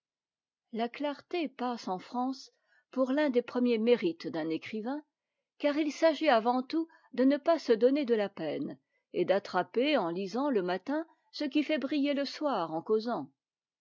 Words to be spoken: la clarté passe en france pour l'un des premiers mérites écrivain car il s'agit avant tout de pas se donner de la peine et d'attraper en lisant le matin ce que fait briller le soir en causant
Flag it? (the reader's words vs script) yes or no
yes